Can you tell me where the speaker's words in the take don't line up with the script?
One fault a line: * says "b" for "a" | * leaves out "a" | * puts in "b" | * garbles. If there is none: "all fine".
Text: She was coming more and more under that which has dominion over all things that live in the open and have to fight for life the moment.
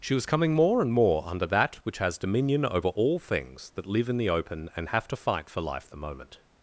all fine